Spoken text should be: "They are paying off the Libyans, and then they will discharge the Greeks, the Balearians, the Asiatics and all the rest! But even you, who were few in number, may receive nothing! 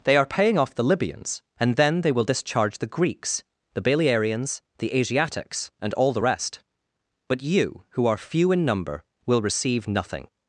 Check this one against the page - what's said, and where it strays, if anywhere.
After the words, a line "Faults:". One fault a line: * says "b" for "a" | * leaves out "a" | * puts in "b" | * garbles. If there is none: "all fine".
"They are paying off the Libyans, and then they will discharge the Greeks, the Balearians, the Asiatics and all the rest! But you, who are few in number, will receive nothing!
Faults:
* leaves out "even"
* says "are" for "were"
* says "will" for "may"